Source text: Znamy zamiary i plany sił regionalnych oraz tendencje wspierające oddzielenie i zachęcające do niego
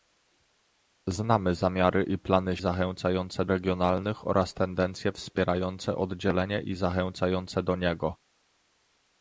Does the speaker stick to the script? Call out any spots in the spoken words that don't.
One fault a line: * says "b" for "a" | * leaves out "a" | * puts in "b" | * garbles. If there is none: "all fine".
* says "zachęcające" for "sił"